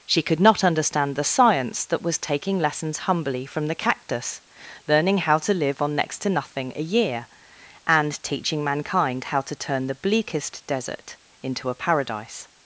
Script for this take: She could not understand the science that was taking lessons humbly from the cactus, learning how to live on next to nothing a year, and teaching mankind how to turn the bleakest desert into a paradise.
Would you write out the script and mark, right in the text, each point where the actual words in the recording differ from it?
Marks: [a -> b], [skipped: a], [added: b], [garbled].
She could not understand the science that was taking lessons humbly from the cactus, learning how to live on next to nothing a year, and teaching mankind how to turn the bleakest desert into a paradise.